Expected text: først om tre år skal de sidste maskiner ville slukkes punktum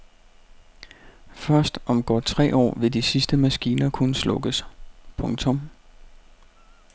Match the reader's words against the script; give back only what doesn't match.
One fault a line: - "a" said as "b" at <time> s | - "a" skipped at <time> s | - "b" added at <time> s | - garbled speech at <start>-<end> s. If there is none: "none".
- "godt" added at 2.0 s
- "skal" said as "vil" at 2.8 s
- "ville" said as "kunne" at 3.9 s